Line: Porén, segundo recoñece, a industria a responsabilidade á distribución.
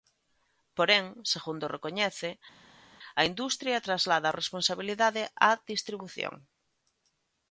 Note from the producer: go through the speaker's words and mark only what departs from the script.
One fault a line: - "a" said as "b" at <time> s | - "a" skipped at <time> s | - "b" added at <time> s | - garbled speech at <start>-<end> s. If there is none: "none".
- "traslada" added at 3.9 s